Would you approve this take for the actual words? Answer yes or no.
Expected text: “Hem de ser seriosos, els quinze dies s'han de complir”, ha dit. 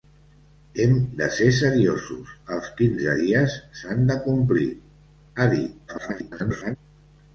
no